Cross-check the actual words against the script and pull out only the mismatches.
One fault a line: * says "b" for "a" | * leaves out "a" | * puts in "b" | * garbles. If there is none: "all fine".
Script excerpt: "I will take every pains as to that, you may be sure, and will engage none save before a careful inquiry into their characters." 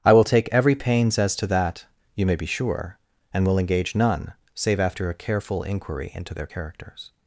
* says "after" for "before"